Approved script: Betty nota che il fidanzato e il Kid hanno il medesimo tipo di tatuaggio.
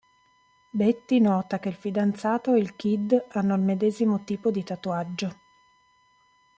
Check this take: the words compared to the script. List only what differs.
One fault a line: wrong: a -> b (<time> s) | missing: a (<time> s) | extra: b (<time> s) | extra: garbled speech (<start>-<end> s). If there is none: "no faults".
no faults